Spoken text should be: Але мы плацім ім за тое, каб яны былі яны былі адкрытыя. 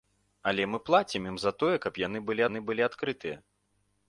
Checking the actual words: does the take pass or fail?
pass